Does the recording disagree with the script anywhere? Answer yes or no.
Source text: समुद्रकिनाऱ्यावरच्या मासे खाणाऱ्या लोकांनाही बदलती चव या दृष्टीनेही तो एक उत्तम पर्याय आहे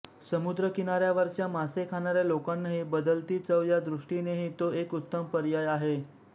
no